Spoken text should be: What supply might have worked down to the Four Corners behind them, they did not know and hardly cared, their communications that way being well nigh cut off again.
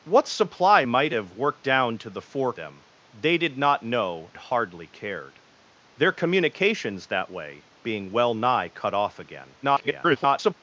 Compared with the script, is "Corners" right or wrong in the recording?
wrong